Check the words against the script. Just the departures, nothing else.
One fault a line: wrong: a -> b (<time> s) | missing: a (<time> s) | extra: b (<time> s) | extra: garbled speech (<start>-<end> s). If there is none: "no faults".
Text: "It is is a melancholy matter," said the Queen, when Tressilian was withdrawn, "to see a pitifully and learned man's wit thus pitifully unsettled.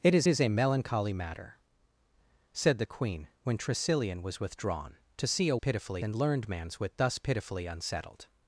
no faults